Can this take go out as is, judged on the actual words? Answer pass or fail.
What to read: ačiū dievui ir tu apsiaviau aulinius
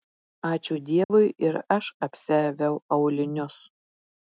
fail